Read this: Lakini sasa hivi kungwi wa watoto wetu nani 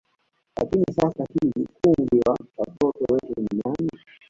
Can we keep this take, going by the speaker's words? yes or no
no